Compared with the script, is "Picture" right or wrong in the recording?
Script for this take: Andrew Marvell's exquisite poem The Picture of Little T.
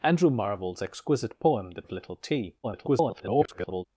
wrong